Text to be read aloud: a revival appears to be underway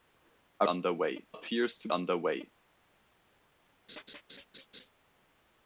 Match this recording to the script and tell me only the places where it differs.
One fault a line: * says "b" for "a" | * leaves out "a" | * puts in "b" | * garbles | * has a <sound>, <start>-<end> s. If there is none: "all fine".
* says "underway" for "revival"
* leaves out "be"
* has a laugh, 3.9-4.9 s